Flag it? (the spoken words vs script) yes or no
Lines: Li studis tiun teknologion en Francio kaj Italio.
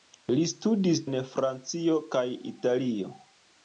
yes